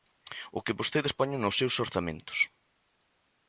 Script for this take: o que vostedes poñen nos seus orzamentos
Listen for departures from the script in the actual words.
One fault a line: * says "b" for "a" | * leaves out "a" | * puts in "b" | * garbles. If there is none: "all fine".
all fine